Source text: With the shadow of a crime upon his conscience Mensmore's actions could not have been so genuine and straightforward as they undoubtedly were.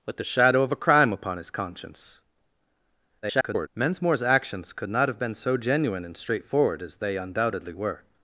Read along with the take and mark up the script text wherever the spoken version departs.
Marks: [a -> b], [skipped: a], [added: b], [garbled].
With the shadow of a crime upon his conscience [garbled] Mensmore's actions could not have been so genuine and straightforward as they undoubtedly were.